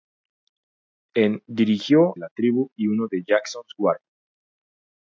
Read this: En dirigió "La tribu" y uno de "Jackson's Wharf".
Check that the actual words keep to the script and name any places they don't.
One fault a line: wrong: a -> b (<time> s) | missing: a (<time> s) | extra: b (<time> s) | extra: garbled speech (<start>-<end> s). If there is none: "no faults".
no faults